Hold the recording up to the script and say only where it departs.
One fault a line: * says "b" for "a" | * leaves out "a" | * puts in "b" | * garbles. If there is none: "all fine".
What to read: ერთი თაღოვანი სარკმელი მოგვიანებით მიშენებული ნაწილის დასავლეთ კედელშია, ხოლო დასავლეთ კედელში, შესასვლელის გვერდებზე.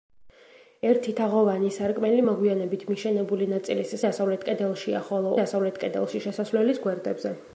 all fine